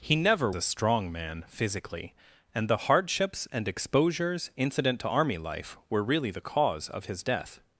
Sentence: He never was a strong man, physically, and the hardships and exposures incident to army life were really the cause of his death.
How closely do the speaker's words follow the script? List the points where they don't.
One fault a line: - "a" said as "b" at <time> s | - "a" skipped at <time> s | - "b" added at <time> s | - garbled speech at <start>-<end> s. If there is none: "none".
- "was" skipped at 0.5 s